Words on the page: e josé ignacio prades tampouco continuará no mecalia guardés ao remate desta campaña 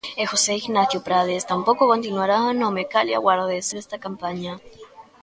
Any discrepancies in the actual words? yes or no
yes